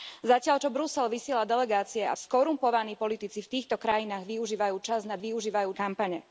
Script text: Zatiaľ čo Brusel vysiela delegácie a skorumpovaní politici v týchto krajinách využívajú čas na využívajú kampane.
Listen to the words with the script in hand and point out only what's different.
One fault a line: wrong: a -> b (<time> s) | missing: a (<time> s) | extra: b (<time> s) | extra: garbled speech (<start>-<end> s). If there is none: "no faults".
no faults